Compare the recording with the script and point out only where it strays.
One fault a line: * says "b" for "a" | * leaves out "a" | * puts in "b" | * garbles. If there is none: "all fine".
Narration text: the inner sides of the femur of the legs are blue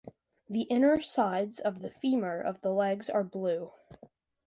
all fine